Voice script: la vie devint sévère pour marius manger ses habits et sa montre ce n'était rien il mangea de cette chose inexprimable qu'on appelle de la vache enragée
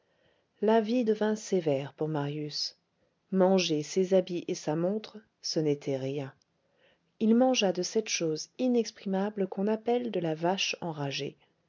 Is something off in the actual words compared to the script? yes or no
no